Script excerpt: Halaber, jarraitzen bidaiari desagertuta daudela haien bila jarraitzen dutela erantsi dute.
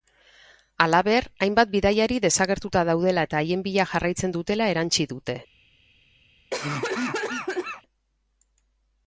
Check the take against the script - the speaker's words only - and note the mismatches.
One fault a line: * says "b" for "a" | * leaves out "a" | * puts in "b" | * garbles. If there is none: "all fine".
* says "hainbat" for "jarraitzen"
* puts in "eta"